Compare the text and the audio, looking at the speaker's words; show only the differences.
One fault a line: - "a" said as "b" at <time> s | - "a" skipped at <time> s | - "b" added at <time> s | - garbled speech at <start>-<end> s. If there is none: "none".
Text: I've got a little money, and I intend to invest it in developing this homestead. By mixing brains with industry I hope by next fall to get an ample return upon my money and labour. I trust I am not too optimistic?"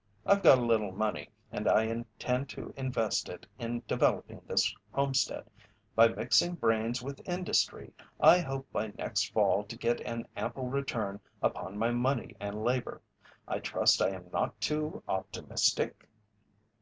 none